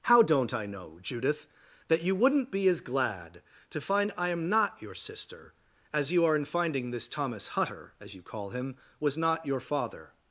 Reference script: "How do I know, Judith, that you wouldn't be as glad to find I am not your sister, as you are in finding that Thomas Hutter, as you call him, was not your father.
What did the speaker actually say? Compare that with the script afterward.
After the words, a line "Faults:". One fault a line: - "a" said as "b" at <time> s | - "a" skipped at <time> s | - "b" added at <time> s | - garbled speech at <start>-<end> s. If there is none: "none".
"How don't I know, Judith, that you wouldn't be as glad to find I am not your sister, as you are in finding this Thomas Hutter, as you call him, was not your father.
Faults:
- "do" said as "don't" at 0.2 s
- "that" said as "this" at 6.9 s